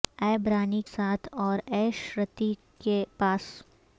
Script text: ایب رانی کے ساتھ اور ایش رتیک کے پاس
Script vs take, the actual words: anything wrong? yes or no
yes